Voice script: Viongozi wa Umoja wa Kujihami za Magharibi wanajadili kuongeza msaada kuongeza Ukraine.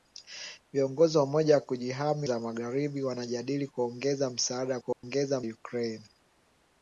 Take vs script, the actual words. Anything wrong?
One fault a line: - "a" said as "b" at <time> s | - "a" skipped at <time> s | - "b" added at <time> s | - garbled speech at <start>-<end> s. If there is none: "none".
none